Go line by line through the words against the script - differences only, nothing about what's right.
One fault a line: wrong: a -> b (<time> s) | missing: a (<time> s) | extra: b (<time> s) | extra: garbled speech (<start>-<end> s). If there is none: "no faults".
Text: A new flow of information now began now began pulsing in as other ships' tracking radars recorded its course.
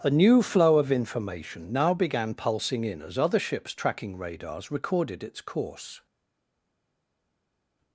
missing: now began (2.3 s)